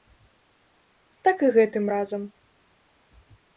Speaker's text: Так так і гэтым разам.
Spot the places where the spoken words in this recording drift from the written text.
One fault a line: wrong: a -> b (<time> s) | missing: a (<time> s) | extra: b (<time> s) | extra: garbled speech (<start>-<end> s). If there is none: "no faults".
missing: так (1.4 s)